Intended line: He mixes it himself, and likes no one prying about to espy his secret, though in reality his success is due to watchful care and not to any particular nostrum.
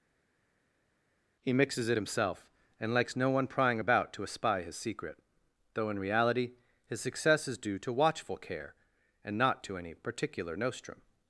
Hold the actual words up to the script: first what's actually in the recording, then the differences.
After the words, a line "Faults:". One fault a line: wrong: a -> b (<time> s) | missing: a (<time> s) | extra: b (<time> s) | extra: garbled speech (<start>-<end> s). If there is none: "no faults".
He mixes it himself, and likes no one prying about to espy his secret, though in reality his success is due to watchful care and not to any particular nostrum.
Faults:
no faults